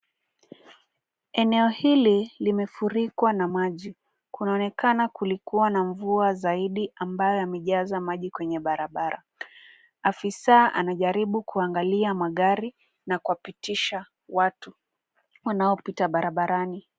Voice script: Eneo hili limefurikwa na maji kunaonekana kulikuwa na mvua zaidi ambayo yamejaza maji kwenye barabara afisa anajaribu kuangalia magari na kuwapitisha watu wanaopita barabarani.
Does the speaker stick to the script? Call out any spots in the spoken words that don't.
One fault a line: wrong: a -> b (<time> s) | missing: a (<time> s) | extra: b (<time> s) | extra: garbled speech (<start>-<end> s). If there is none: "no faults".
no faults